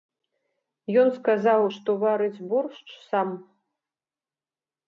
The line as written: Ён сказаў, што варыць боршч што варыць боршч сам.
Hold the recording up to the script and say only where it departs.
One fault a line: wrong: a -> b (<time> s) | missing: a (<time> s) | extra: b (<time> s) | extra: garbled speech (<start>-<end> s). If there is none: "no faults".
missing: што варыць боршч (2.9 s)